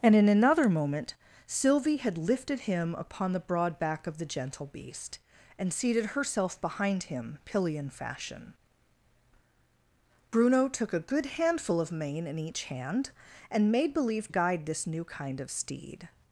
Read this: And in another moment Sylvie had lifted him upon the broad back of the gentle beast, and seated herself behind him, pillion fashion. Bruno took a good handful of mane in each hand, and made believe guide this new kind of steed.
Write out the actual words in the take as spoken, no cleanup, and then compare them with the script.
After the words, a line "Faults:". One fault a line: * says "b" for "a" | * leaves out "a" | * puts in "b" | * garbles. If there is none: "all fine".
And in another moment Sylvie had lifted him upon the broad back of the gentle beast, and seated herself behind him, pillion fashion. Bruno took a good handful of mane in each hand, and made believe guide this new kind of steed.
Faults:
all fine